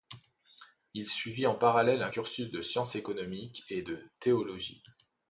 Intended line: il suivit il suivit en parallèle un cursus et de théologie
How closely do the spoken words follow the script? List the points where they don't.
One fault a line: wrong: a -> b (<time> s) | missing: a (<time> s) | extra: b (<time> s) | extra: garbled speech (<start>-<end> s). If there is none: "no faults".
missing: il suivit (1.4 s)
extra: de sciences économiques (2.5 s)